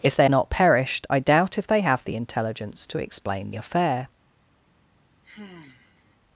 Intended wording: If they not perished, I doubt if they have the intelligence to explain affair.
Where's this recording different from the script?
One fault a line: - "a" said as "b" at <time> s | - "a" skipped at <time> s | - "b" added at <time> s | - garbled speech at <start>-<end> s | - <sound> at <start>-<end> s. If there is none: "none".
- sigh at 5.2-6.2 s